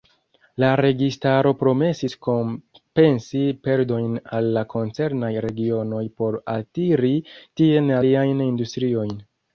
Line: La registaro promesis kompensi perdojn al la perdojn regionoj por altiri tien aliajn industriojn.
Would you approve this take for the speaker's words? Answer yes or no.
no